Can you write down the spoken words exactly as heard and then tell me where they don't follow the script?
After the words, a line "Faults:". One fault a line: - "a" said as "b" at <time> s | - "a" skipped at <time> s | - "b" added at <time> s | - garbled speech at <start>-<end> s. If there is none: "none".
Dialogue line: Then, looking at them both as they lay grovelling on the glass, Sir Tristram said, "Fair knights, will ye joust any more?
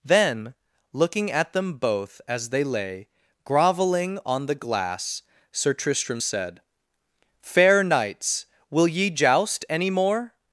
Then, looking at them both as they lay grovelling on the glass, Sir Tristram said, "Fair knights, will ye joust any more?
Faults:
none